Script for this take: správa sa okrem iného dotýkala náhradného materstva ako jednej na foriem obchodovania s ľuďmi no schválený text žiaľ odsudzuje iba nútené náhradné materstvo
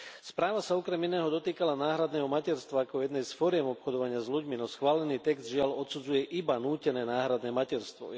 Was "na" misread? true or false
true